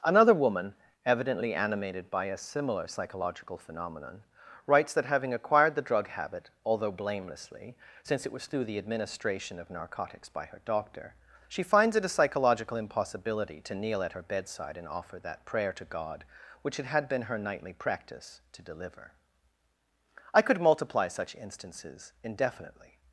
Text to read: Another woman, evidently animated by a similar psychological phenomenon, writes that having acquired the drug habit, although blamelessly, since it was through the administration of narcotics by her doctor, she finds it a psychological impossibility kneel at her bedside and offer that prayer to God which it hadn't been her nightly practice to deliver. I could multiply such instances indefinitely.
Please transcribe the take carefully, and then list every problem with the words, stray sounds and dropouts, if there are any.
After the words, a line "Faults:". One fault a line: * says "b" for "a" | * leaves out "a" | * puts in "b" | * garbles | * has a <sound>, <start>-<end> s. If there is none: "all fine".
Another woman, evidently animated by a similar psychological phenomenon, writes that having acquired the drug habit, although blamelessly, since it was through the administration of narcotics by her doctor, she finds it a psychological impossibility to kneel at her bedside and offer that prayer to God which it had been her nightly practice to deliver. I could multiply such instances indefinitely.
Faults:
* puts in "to"
* says "had" for "hadn't"